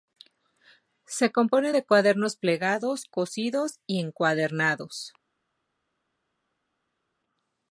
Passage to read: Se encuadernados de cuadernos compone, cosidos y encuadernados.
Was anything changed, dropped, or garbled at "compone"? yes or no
yes